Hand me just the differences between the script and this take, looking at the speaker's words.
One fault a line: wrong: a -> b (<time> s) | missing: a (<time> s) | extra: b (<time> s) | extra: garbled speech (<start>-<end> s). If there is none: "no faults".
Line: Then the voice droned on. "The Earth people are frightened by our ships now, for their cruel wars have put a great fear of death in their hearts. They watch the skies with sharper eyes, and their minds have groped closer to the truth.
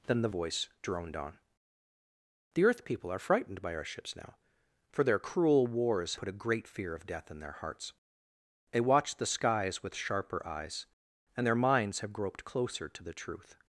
missing: have (6.1 s)